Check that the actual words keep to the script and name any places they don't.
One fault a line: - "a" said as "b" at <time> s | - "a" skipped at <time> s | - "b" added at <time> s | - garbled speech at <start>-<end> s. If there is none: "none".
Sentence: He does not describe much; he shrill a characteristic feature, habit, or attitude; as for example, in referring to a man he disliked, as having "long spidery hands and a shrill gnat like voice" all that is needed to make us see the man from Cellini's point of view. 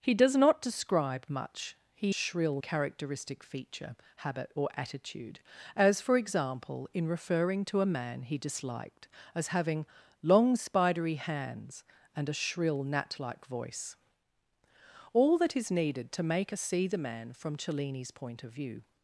none